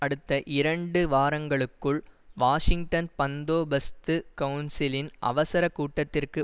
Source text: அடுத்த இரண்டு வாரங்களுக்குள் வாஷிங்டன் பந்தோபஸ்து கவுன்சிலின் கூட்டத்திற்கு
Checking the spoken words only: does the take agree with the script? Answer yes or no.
no